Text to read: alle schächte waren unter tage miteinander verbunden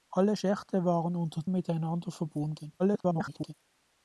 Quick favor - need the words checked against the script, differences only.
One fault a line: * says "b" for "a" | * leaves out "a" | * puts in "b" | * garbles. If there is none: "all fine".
* leaves out "tage"
* garbles